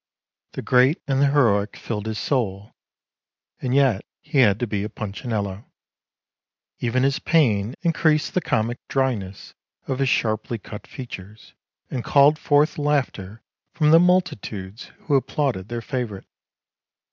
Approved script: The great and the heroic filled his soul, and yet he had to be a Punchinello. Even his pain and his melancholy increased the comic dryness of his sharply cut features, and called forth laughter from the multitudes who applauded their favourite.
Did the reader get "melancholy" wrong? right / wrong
wrong